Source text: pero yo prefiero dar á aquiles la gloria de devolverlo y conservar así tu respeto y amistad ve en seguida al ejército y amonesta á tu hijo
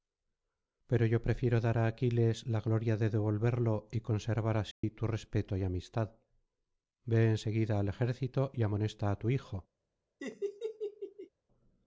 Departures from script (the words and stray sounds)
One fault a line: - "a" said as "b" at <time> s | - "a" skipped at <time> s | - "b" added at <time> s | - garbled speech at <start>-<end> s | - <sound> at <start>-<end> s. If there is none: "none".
- dropout at 4.7-4.8 s
- laugh at 10.2-11.3 s